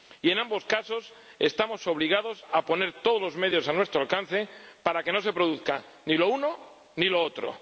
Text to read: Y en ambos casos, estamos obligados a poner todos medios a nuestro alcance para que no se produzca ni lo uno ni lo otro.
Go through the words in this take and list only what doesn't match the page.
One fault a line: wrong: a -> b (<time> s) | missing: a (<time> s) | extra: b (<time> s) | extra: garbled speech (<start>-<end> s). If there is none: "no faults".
extra: los (3.2 s)